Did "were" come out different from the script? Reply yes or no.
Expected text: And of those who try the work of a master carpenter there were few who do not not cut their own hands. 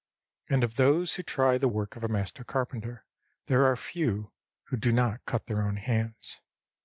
yes